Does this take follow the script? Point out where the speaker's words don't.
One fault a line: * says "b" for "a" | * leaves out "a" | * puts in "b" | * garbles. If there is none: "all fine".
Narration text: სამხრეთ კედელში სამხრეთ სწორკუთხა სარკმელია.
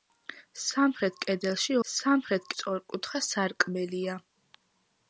all fine